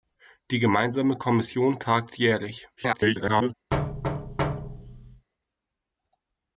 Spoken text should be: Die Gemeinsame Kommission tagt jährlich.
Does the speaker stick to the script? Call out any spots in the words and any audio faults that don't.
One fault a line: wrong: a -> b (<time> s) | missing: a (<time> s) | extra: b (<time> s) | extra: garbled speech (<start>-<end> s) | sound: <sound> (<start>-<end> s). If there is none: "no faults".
extra: garbled speech (2.8-3.5 s)
sound: thud (3.7-5.3 s)